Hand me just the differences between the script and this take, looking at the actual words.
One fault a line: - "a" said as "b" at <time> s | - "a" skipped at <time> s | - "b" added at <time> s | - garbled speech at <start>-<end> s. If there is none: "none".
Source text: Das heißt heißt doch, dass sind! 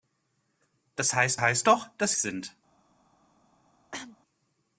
none